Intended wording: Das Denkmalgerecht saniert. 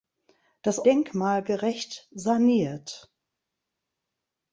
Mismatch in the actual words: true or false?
false